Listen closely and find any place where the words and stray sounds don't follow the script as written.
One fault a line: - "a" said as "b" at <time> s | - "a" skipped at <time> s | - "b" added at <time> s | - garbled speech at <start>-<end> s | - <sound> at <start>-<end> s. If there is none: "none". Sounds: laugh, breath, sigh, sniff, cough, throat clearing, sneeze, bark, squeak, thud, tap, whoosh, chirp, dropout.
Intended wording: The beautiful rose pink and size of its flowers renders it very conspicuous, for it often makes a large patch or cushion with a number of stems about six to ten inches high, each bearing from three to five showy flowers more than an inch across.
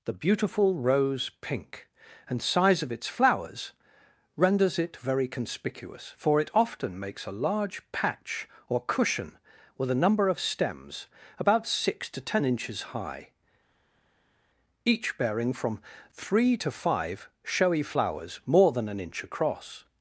none